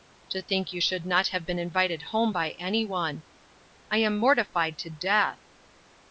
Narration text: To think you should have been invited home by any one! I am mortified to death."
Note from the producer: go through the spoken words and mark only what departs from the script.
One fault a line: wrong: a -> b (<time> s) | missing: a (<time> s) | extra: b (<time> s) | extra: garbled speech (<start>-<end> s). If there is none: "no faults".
extra: not (1.0 s)